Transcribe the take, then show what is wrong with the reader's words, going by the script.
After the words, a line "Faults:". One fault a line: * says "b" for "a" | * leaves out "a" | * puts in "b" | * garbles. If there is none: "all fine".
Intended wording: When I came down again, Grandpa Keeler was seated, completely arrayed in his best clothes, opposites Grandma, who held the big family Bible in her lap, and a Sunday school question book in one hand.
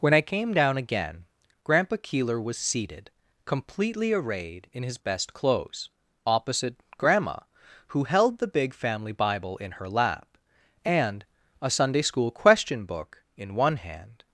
When I came down again, Grandpa Keeler was seated, completely arrayed in his best clothes, opposite Grandma, who held the big family Bible in her lap, and a Sunday school question book in one hand.
Faults:
* says "opposite" for "opposites"